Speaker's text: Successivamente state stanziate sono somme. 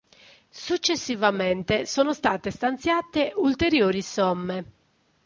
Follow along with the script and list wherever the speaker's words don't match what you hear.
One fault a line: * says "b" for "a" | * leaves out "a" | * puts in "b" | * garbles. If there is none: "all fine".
* puts in "sono"
* says "ulteriori" for "sono"